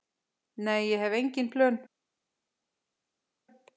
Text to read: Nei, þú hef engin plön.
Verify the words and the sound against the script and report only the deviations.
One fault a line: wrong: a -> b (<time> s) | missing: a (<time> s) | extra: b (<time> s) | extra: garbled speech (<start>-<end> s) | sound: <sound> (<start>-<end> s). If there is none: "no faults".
wrong: þú -> ég (0.9 s)